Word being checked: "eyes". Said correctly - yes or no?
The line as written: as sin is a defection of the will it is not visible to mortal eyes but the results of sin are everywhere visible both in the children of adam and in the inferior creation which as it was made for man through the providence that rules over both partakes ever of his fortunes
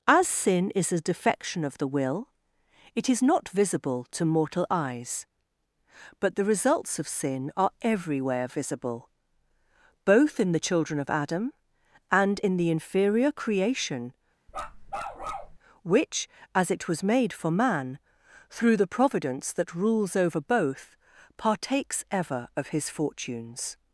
yes